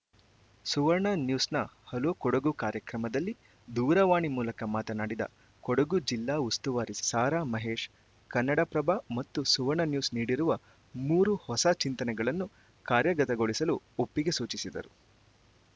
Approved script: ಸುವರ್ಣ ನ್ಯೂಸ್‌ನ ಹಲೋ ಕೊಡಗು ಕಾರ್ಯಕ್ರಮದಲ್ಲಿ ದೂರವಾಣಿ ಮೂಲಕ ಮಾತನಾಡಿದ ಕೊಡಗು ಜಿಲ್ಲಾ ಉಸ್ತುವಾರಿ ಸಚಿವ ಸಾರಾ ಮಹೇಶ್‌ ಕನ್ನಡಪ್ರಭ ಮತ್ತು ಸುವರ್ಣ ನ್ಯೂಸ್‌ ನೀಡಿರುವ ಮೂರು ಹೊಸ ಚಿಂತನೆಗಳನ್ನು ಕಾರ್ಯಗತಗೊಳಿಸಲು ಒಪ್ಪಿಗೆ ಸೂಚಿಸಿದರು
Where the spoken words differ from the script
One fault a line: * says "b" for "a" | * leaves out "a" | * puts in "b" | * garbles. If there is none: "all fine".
* leaves out "ಸಚಿವ"